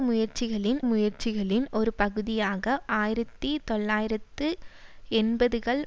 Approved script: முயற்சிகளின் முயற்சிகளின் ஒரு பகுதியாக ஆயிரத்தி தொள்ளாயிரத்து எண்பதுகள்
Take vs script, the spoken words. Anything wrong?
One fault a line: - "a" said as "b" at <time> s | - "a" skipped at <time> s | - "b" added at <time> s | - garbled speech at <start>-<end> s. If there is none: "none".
none